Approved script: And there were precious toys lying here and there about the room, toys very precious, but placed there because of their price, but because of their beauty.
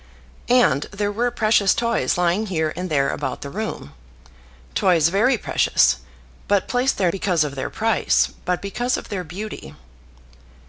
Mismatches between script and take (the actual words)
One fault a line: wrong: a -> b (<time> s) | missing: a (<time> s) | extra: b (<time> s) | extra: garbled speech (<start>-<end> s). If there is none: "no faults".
no faults